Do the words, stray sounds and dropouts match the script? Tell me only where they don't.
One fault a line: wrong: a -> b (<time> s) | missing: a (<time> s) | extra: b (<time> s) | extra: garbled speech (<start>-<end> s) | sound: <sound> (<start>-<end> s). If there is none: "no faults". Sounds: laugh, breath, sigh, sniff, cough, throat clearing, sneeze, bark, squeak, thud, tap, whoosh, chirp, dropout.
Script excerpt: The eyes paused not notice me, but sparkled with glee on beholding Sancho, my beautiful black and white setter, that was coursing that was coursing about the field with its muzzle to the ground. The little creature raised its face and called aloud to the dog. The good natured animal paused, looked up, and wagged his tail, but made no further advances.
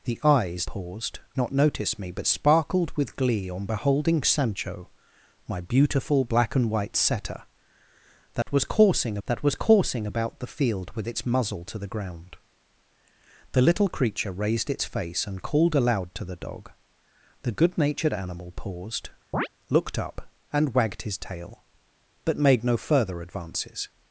sound: dropout (8.4-8.5 s)
sound: chirp (19.3-19.5 s)